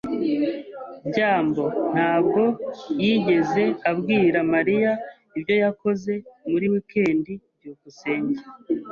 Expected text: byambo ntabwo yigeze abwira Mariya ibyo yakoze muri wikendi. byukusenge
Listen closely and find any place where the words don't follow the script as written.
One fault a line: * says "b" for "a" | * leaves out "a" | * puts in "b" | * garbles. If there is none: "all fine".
all fine